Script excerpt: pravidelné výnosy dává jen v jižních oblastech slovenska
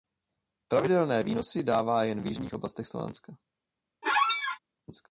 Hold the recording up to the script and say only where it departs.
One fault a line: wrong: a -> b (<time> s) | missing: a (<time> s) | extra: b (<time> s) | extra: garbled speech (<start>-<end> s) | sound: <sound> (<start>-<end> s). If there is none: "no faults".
sound: squeak (4.0-4.6 s)